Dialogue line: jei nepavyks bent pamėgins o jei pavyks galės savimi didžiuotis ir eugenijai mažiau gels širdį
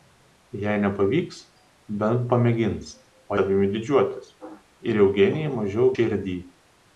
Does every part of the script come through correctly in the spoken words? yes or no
no